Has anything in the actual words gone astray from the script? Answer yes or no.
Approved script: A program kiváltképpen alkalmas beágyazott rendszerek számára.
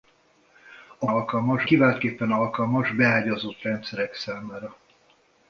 yes